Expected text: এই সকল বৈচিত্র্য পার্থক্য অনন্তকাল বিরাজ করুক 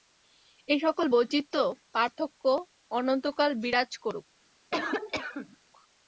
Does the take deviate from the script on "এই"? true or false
false